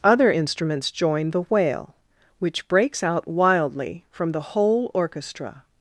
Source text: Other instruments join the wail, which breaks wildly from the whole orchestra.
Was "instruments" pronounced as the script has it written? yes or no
yes